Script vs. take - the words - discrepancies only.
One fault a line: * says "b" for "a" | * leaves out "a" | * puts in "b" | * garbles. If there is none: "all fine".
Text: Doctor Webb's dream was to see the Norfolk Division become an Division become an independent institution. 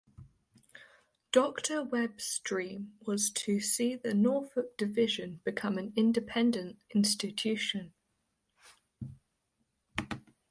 * leaves out "Division become an"